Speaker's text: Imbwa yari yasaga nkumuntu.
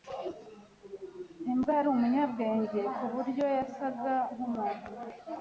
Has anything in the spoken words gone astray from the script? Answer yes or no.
yes